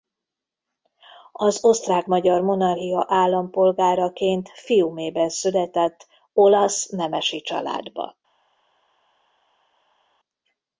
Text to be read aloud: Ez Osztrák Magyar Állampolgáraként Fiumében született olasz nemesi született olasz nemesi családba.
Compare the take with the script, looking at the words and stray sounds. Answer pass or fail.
fail